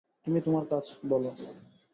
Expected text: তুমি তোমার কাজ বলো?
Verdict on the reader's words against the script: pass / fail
pass